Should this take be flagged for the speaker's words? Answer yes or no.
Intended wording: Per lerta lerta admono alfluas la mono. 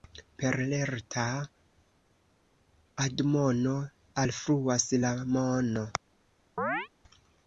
yes